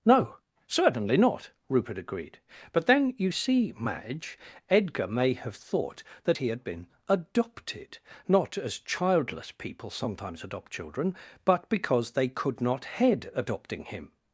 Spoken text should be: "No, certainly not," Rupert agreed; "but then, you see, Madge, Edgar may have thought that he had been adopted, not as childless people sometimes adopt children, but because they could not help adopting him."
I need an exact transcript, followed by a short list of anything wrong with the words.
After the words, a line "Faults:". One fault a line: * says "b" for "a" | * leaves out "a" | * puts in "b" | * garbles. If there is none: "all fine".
"No, certainly not," Rupert agreed; "but then, you see, Madge, Edgar may have thought that he had been adopted, not as childless people sometimes adopt children, but because they could not head adopting him."
Faults:
* says "head" for "help"